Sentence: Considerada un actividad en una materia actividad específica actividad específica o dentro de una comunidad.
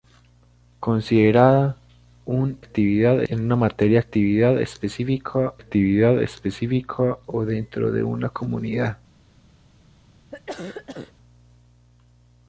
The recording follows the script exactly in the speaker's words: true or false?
true